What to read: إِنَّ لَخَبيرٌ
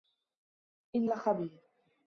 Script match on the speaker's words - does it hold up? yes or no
yes